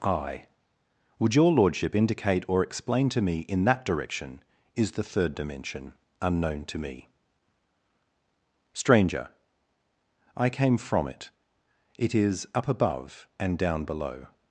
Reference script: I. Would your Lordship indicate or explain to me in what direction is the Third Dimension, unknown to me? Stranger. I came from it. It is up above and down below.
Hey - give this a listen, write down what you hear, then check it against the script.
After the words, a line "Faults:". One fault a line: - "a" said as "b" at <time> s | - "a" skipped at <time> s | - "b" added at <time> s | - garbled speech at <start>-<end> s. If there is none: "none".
I. Would your Lordship indicate or explain to me in that direction is the Third Dimension, unknown to me? Stranger. I came from it. It is up above and down below.
Faults:
- "what" said as "that" at 3.6 s